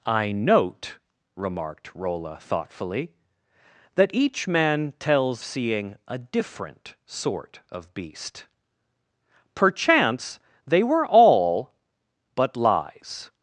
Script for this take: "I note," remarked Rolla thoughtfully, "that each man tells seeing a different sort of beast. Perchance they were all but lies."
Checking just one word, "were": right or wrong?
right